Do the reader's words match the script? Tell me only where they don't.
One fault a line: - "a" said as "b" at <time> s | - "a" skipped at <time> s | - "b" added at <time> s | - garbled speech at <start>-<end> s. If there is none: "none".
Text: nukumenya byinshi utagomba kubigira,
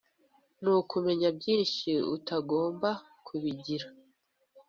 none